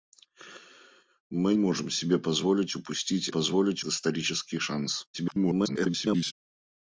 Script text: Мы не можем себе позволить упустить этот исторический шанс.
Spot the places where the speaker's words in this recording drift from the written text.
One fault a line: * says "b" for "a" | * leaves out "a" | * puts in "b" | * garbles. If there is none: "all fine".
* leaves out "не"
* says "позволить" for "этот"
* garbles